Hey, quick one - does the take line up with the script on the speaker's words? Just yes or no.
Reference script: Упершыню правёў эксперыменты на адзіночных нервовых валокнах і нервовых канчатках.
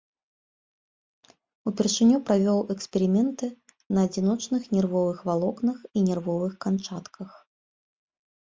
yes